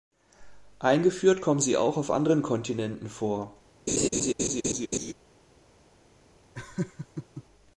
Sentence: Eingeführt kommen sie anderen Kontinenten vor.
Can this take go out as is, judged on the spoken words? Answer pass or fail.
fail